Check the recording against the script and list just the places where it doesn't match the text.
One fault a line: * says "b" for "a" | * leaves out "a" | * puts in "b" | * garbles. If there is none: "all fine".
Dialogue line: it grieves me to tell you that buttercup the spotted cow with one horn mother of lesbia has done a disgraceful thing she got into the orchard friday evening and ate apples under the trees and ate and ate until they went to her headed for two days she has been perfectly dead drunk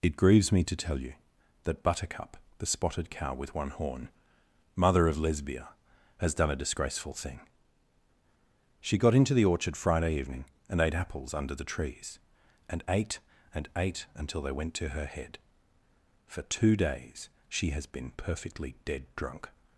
* says "head" for "headed"